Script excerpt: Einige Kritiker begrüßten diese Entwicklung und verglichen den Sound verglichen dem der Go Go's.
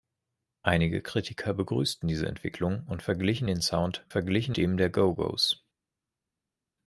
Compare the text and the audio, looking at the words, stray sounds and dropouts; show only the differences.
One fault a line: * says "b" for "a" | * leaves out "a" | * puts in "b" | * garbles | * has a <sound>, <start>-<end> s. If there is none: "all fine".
all fine